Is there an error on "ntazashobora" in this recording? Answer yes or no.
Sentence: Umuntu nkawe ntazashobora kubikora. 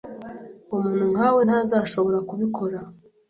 no